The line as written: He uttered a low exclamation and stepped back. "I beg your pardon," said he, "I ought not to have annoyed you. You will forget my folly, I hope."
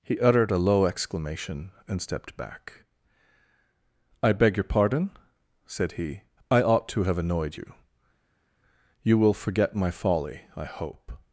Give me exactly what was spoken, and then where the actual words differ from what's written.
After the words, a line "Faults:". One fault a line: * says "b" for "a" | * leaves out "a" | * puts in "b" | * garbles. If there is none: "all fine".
He uttered a low exclamation and stepped back. "I beg your pardon," said he, "I ought to have annoyed you. You will forget my folly, I hope."
Faults:
* leaves out "not"